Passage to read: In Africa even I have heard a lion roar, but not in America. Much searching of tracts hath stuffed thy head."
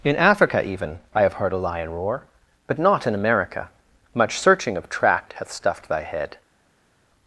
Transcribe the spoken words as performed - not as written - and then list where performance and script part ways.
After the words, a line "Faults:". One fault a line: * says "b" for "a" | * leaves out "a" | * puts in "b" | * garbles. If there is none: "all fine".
In Africa even I have heard a lion roar, but not in America. Much searching of tract hath stuffed thy head."
Faults:
* says "tract" for "tracts"